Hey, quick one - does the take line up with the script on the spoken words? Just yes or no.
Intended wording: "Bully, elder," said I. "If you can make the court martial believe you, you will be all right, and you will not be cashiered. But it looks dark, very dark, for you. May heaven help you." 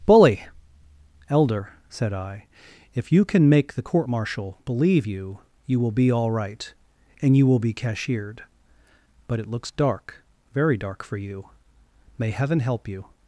no